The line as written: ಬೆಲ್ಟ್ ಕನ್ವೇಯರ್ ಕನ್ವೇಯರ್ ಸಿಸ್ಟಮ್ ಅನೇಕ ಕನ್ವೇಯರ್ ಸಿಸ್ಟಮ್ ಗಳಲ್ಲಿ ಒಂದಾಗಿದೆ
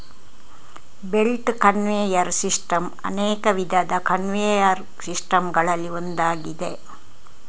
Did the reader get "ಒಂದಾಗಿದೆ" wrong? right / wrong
right